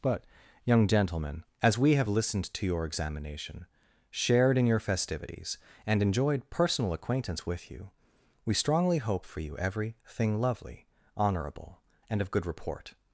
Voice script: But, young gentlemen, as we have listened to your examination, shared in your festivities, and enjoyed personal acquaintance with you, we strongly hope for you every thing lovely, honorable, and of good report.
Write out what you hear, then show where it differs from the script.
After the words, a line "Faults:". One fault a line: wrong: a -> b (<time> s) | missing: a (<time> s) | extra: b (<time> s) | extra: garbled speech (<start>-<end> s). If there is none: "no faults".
But, young gentlemen, as we have listened to your examination, shared in your festivities, and enjoyed personal acquaintance with you, we strongly hope for you every thing lovely, honorable, and of good report.
Faults:
no faults